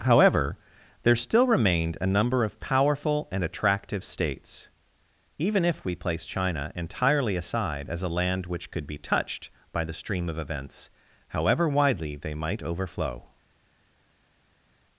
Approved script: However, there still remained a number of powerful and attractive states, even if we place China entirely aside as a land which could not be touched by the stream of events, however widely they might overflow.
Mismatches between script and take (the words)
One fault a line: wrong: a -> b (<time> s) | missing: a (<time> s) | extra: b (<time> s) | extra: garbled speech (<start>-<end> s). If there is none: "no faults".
missing: not (8.8 s)